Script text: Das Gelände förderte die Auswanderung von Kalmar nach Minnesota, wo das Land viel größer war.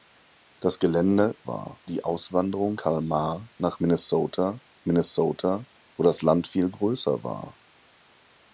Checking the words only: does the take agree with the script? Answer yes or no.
no